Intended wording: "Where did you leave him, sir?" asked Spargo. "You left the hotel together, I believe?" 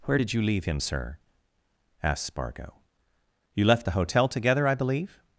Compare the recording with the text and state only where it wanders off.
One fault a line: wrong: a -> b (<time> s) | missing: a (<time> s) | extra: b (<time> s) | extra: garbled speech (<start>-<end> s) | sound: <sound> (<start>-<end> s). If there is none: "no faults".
no faults